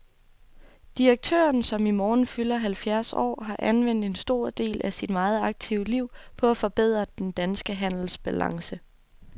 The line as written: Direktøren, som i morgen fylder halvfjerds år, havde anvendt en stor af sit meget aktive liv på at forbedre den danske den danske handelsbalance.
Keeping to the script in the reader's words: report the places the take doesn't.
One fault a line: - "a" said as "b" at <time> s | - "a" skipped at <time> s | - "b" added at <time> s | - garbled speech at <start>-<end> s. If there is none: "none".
- "havde" said as "har" at 3.4 s
- "del" added at 4.5 s
- "den danske" skipped at 7.8 s